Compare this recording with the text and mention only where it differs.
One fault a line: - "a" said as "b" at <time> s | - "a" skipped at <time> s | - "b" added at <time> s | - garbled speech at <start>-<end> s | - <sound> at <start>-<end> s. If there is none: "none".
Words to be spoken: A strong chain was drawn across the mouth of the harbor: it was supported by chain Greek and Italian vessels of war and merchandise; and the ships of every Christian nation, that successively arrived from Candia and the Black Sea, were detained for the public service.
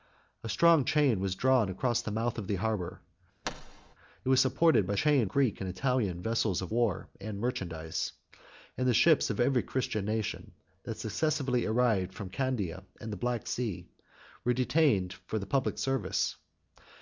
- thud at 3.4-4.0 s